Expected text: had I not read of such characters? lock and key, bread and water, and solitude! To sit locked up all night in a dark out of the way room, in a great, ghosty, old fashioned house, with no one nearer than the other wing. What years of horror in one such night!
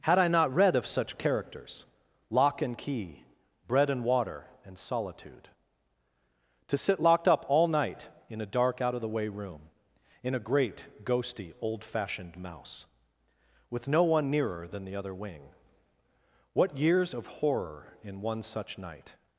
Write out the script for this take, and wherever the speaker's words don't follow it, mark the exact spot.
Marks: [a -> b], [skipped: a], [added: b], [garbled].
had I not read of such characters? lock and key, bread and water, and solitude! To sit locked up all night in a dark out of the way room, in a great, ghosty, old fashioned [house, -> mouse] with no one nearer than the other wing. What years of horror in one such night!